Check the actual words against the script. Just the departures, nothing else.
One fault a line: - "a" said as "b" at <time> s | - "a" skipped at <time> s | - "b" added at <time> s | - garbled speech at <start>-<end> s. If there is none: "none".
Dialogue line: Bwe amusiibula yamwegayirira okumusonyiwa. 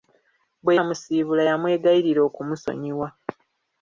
none